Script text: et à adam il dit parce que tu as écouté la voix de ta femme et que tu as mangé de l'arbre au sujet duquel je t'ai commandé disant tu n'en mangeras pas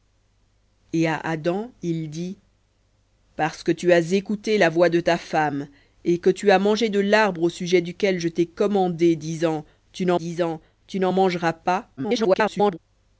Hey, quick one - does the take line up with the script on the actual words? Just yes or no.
no